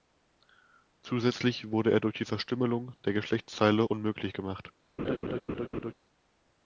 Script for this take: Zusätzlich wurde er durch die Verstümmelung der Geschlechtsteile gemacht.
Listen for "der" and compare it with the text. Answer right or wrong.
right